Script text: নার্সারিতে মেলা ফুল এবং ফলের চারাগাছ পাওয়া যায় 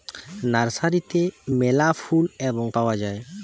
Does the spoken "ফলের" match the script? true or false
false